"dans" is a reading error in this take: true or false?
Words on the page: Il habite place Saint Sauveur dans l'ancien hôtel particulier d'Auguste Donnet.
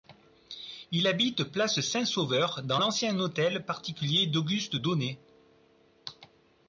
false